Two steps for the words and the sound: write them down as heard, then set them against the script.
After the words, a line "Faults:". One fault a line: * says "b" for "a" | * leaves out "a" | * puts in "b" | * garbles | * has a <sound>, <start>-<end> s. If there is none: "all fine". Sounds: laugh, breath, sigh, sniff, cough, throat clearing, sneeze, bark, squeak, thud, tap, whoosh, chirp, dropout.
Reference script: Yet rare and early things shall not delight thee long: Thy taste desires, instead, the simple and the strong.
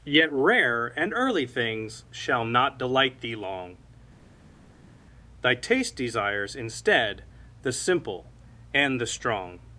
Yet rare and early things shall not delight thee long: Thy taste desires, instead, the simple and the strong.
Faults:
all fine